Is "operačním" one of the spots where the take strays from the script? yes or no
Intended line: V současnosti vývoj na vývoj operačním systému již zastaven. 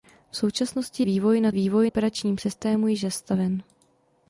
no